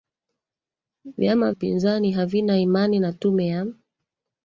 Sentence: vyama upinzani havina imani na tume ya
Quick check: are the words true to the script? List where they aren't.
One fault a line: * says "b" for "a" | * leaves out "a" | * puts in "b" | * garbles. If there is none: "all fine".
all fine